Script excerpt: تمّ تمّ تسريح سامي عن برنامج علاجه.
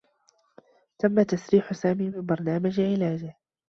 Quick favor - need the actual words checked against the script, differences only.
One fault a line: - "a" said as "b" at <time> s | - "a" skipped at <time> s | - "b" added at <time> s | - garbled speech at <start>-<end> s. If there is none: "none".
- "تمّ" skipped at 1.2 s
- "عن" said as "من" at 2.1 s